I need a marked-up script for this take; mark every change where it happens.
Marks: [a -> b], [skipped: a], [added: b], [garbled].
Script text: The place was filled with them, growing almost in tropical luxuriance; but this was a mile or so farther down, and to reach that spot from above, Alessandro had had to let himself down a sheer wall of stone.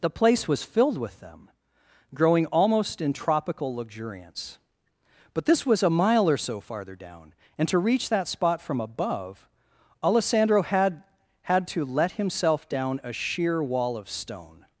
The place was filled with them, growing almost in tropical luxuriance; but this was a mile or so farther down, and to reach that spot from above, Alessandro had had to let himself down a sheer wall of stone.